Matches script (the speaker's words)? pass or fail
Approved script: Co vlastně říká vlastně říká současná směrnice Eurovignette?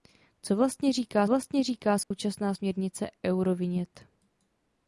pass